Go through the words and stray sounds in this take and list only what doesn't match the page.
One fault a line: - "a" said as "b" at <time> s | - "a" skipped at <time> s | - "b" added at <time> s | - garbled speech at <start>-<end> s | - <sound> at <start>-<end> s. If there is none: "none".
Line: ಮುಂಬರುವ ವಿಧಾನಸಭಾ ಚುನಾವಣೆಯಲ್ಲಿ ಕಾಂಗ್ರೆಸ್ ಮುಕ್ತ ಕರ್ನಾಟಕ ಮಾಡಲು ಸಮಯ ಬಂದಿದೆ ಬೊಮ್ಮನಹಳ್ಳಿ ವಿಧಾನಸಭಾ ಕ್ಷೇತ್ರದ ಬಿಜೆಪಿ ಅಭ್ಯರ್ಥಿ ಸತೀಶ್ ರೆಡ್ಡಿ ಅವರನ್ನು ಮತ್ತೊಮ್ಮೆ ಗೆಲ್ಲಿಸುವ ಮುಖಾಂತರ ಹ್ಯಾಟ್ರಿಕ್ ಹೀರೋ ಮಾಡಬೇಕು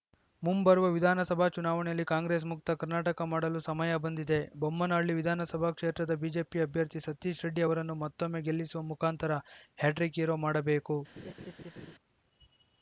- laugh at 11.2-12.0 s